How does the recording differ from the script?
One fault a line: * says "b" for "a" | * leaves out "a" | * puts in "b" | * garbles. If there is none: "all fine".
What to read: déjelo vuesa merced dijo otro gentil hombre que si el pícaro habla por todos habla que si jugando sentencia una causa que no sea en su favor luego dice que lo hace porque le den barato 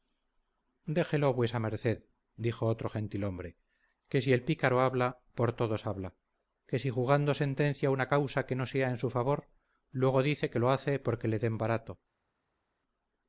all fine